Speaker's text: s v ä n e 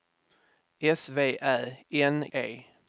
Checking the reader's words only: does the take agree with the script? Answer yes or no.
yes